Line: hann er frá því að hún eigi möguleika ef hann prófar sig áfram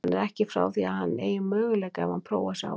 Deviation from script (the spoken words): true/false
true